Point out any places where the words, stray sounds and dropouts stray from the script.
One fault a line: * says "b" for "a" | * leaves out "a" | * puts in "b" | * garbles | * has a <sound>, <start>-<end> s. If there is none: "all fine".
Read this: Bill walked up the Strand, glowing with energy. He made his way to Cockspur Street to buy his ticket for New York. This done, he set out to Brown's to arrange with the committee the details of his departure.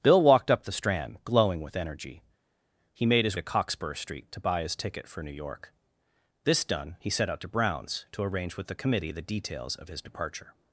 * leaves out "way"